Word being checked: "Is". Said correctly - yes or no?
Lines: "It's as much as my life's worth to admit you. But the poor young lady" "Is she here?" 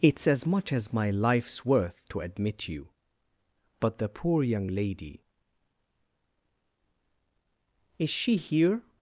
yes